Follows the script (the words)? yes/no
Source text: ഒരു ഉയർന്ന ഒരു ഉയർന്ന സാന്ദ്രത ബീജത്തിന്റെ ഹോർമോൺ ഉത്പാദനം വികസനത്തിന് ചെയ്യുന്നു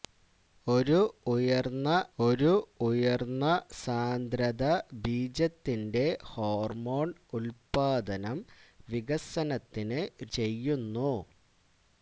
yes